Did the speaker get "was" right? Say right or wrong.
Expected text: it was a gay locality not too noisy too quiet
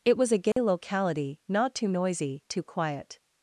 right